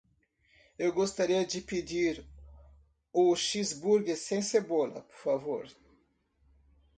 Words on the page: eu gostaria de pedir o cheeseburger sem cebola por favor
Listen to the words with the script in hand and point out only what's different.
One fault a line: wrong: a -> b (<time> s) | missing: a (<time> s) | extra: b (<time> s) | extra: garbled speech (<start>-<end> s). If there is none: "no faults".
no faults